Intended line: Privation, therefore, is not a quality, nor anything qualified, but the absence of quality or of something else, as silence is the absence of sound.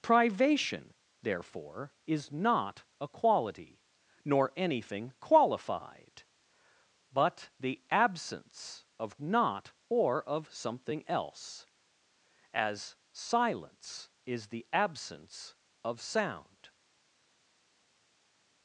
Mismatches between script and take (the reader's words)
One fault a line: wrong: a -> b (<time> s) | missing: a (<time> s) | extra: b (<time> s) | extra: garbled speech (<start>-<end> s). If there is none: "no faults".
wrong: quality -> not (9.2 s)